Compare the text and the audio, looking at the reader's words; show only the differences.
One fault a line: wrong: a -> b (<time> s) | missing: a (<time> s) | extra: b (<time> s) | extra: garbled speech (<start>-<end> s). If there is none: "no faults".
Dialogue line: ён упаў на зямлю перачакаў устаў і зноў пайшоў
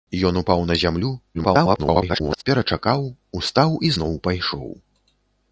extra: garbled speech (1.3-2.4 s)